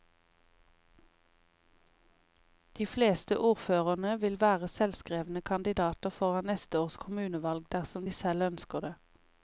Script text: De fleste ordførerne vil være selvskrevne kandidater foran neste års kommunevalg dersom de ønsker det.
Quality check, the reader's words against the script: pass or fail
fail